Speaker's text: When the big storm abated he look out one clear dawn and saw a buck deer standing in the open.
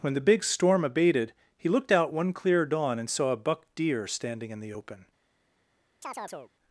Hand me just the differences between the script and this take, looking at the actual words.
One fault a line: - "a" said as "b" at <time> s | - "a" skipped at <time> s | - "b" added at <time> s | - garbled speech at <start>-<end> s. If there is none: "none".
- "look" said as "looked" at 1.7 s